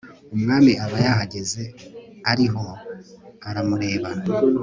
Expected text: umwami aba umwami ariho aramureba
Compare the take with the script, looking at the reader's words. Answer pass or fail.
fail